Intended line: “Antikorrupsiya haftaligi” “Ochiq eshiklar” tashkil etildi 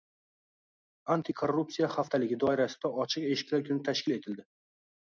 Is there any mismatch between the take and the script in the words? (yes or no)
yes